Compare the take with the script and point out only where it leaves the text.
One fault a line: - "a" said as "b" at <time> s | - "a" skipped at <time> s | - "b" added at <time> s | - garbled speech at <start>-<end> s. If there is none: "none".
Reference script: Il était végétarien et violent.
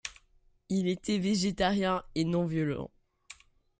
- "non" added at 2.2 s